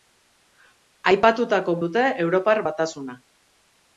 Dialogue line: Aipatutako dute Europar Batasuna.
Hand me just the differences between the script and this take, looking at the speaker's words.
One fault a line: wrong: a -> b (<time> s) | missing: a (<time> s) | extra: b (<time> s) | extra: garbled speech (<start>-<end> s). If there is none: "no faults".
no faults